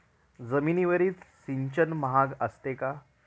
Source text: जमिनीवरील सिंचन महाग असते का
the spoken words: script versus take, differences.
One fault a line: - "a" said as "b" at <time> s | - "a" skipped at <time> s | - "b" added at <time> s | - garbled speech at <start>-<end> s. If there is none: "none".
none